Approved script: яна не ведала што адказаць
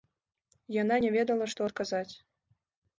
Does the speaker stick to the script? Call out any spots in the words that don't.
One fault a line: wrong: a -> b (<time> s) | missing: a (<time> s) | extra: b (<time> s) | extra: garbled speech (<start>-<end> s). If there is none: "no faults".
no faults